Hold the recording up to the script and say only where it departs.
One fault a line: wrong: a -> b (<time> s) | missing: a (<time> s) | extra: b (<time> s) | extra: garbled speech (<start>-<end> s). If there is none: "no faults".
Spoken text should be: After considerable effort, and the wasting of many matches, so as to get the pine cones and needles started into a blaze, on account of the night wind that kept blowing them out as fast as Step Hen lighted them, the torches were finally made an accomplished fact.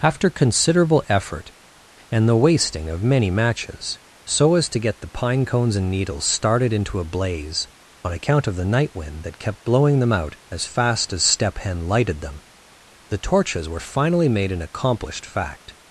no faults